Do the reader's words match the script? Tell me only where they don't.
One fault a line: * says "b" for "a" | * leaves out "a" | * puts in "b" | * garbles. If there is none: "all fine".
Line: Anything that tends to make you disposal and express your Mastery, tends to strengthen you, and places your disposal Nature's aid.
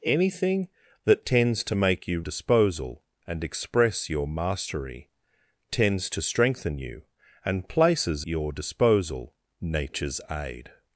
all fine